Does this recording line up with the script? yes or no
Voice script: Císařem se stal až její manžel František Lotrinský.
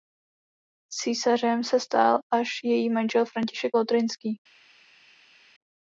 yes